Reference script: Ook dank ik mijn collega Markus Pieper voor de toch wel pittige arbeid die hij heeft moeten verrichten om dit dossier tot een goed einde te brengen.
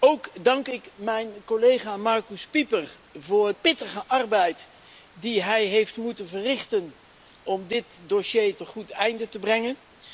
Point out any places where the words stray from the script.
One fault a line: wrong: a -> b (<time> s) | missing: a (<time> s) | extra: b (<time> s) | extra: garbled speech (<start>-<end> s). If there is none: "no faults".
missing: de toch wel (3.5 s)
missing: tot (8.6 s)